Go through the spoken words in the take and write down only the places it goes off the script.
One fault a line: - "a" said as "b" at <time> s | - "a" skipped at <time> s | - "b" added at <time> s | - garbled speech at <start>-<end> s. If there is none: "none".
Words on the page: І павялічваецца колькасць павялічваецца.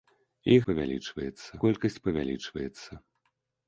none